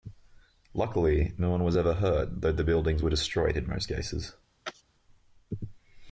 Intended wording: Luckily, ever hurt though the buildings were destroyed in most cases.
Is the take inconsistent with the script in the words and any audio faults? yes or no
yes